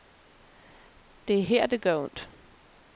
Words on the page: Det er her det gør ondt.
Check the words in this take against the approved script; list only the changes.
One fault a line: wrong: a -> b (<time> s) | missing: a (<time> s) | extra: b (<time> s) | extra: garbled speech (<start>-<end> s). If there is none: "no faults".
no faults